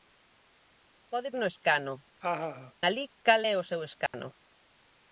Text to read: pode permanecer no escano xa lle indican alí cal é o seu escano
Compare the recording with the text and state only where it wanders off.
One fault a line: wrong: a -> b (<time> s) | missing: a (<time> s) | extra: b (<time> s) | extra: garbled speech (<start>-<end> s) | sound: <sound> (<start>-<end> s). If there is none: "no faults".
missing: permanecer (1.3 s)
missing: xa lle indican (1.9 s)
sound: laugh (2.2-2.7 s)
sound: dropout (4.1-4.1 s)